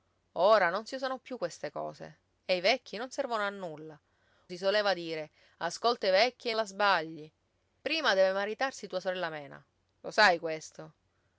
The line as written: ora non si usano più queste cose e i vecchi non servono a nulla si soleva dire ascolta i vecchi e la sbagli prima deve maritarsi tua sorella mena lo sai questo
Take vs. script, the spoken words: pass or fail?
pass